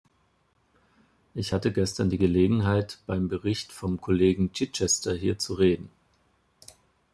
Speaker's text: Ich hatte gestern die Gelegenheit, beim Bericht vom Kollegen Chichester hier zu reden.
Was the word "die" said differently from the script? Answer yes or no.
no